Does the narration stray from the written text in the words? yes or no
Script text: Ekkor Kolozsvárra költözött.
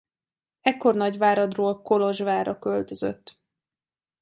yes